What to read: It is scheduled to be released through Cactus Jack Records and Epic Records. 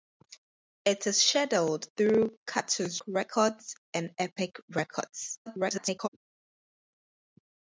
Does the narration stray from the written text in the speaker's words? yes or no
yes